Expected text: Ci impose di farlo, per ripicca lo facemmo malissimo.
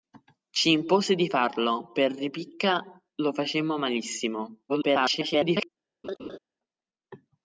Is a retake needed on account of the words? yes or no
yes